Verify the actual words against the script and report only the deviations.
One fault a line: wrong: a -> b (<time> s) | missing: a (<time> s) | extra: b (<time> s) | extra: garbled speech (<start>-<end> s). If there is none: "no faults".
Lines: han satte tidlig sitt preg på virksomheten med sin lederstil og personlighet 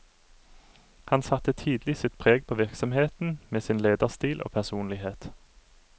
no faults